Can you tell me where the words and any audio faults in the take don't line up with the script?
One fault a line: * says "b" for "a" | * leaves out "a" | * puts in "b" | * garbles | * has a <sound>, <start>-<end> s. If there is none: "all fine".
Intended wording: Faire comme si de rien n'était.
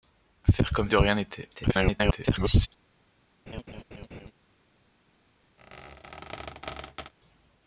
* leaves out "si"
* garbles
* has a laugh, 3.5-4.3 s
* has a squeak, 5.6-7.1 s